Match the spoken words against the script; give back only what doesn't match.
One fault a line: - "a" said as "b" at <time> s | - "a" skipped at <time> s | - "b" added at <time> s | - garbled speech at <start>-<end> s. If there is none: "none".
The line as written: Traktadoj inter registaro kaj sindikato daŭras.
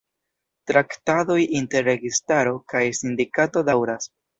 none